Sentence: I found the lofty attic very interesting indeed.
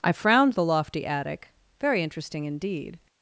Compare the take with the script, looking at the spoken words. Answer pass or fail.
fail